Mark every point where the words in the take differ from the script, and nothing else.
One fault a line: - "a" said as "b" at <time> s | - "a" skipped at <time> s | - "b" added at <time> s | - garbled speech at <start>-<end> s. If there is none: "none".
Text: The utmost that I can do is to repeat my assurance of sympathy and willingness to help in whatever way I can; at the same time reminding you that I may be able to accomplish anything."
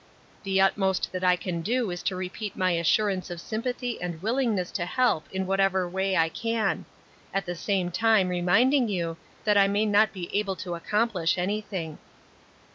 - "not" added at 9.8 s